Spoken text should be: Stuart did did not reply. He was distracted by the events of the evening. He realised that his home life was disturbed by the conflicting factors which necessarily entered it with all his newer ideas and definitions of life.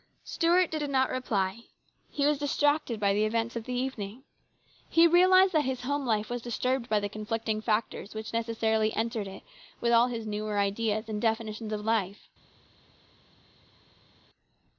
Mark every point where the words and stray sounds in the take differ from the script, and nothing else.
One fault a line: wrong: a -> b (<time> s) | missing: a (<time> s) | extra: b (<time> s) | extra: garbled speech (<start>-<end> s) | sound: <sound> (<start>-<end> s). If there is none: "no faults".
no faults